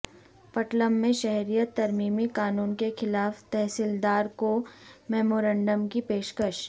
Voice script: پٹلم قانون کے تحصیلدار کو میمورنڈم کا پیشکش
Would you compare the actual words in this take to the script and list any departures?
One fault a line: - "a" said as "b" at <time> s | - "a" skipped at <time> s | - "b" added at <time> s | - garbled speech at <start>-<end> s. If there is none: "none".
- "میں شہریت ترمیمی" added at 0.9 s
- "خلاف" added at 3.0 s
- "کا" said as "کی" at 5.9 s